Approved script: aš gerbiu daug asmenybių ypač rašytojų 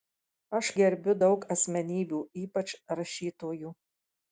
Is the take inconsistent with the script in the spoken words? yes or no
no